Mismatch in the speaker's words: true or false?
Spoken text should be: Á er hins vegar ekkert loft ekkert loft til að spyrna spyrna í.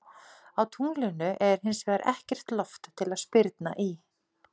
true